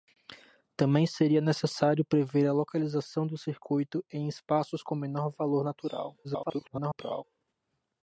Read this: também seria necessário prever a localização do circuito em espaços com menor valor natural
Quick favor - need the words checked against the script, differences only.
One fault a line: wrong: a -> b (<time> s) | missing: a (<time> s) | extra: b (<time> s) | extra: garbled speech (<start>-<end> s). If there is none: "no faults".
extra: garbled speech (6.2-7.2 s)